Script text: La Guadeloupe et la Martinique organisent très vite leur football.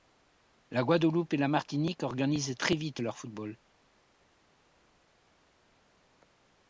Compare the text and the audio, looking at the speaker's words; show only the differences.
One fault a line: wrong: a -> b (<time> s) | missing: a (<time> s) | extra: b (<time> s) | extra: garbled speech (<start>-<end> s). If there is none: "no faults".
no faults